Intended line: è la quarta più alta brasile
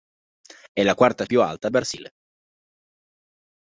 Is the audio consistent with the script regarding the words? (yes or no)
yes